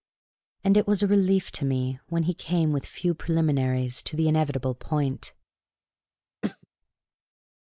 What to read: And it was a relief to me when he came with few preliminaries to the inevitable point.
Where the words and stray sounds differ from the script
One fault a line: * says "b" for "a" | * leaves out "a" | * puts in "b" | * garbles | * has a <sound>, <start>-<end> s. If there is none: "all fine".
* has a throat clearing, 6.4-6.7 s